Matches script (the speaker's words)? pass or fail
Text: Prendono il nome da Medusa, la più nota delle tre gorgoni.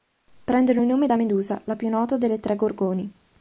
pass